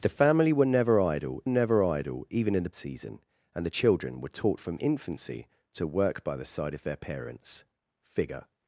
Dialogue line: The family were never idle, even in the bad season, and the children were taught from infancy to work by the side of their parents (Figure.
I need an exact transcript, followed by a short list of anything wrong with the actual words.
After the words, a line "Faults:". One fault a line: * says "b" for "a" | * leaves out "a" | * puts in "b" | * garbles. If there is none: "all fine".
The family were never idle never idle, even in the season, and the children were taught from infancy to work by the side of their parents (Figure.
Faults:
* puts in "never idle"
* leaves out "bad"